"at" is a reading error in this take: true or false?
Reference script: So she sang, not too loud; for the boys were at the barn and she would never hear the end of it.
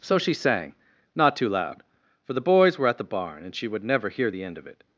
false